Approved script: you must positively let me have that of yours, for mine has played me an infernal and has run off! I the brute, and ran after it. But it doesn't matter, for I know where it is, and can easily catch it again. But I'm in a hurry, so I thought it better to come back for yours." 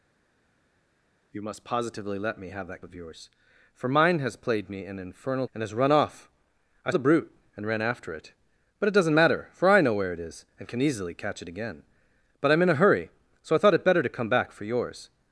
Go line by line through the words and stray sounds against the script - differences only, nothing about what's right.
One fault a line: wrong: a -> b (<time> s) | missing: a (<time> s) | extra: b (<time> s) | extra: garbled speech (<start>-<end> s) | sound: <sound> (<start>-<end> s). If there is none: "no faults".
no faults